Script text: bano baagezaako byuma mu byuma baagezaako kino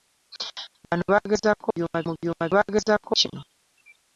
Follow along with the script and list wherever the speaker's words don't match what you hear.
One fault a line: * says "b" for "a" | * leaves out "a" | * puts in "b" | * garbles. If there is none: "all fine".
all fine